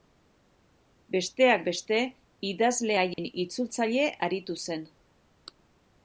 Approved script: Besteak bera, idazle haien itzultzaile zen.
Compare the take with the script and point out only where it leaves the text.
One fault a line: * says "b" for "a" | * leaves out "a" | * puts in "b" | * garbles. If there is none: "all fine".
* says "beste" for "bera"
* puts in "aritu"